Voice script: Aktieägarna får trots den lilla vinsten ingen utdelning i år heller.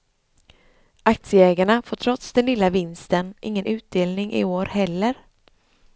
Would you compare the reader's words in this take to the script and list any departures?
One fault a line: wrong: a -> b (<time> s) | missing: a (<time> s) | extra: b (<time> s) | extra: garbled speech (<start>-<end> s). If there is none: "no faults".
no faults